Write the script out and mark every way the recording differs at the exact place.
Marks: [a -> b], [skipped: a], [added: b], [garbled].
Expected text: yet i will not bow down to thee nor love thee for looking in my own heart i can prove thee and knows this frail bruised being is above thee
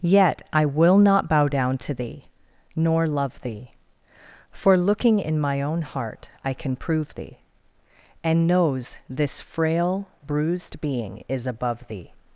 yet i will not bow down to thee nor love thee for looking in my own heart i can prove thee and knows this frail bruised being is above thee